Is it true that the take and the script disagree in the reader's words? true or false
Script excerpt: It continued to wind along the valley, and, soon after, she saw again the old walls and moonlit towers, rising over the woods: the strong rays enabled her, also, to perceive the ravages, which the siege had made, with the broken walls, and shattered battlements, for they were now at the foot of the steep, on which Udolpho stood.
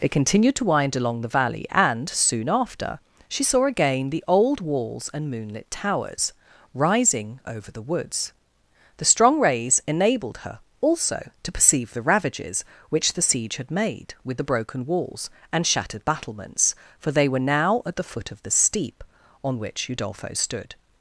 false